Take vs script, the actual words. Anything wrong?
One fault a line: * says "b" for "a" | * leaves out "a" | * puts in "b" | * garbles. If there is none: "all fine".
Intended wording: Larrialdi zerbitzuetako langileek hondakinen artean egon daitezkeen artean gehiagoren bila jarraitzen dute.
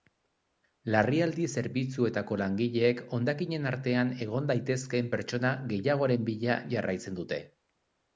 * says "pertsona" for "artean"